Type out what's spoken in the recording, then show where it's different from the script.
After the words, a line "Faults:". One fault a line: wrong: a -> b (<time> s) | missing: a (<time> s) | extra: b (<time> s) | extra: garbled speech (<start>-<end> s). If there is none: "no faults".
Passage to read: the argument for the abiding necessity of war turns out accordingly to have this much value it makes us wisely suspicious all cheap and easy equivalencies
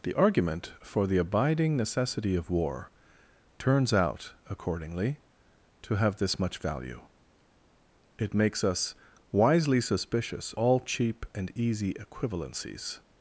the argument for the abiding necessity of war turns out accordingly to have this much value it makes us wisely suspicious all cheap and easy equivalencies
Faults:
no faults